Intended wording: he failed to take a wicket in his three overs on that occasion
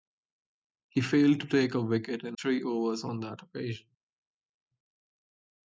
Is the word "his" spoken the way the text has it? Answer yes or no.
no